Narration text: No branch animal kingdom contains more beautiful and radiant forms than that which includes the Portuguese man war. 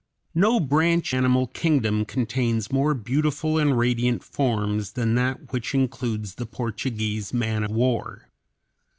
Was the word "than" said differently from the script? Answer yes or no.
no